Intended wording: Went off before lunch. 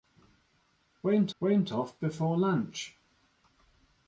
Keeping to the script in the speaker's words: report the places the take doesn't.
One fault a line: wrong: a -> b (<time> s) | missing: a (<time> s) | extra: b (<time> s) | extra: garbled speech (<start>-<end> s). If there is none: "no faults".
extra: went (1.4 s)